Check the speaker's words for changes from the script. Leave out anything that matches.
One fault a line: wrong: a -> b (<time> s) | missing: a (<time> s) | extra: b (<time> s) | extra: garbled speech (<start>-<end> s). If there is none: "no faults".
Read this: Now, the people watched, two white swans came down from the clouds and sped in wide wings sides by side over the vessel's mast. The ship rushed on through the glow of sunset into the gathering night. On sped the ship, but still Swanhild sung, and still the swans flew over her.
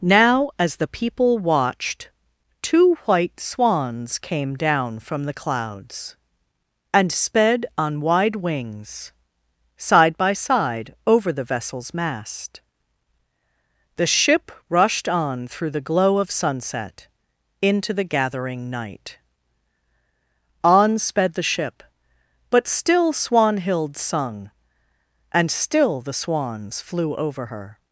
extra: as (0.6 s)
wrong: in -> on (7.8 s)
wrong: sides -> side (9.8 s)